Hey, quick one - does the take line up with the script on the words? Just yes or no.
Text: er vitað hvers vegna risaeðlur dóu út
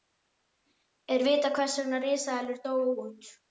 yes